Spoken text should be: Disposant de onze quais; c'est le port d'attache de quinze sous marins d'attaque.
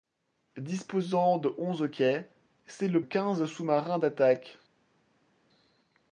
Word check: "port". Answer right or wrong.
wrong